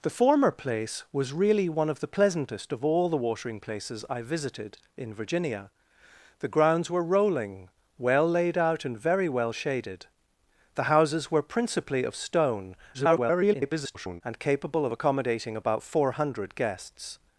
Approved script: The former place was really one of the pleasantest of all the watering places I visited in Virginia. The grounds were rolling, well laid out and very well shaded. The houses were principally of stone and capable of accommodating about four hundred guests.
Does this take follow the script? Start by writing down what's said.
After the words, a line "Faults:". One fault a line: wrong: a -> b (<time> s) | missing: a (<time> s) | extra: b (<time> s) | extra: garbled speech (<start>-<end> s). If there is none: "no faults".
The former place was really one of the pleasantest of all the watering places I visited in Virginia. The grounds were rolling, well laid out and very well shaded. The houses were principally of stone [garbled] and capable of accommodating about four hundred guests.
Faults:
extra: garbled speech (12.9-14.2 s)